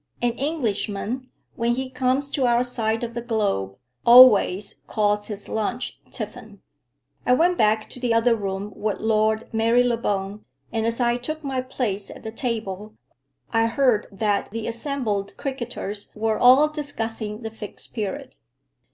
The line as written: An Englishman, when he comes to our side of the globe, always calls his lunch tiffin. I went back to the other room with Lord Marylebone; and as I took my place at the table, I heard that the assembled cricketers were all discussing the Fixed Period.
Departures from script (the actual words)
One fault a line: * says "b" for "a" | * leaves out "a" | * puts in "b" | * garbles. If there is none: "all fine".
all fine